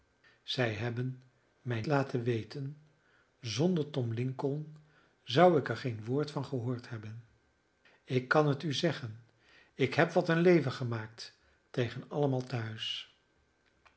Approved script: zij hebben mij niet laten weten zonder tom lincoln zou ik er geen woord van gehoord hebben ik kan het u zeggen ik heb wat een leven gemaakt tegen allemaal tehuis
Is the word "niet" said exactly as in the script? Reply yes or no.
no